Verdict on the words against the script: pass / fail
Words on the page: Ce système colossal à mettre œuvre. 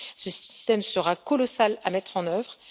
fail